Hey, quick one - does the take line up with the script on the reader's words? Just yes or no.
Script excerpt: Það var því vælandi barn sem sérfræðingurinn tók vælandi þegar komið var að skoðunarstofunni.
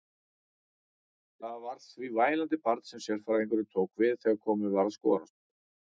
no